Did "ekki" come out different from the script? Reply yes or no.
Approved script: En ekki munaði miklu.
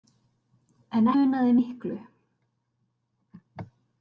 yes